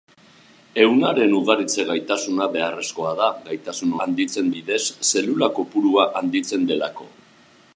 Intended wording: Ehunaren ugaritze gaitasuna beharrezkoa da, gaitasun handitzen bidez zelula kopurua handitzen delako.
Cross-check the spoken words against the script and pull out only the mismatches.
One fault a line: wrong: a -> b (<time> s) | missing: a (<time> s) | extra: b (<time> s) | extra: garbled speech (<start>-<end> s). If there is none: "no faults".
no faults